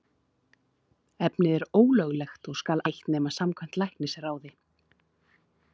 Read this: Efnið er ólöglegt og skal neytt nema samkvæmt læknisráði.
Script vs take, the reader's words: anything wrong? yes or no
no